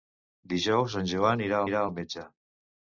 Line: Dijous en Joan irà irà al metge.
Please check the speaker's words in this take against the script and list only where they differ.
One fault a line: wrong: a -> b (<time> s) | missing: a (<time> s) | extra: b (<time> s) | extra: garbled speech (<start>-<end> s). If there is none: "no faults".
no faults